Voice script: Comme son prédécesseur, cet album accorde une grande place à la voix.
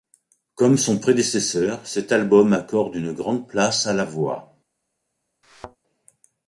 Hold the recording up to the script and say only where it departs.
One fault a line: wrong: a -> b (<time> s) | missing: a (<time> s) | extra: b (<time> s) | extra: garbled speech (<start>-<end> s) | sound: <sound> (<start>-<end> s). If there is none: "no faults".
sound: thud (5.4-5.8 s)